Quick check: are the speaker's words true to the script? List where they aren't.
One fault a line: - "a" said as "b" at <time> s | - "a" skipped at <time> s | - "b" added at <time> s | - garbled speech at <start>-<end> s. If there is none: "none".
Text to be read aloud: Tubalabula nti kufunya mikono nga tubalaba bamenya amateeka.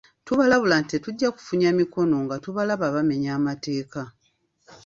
- "tetujja" added at 0.9 s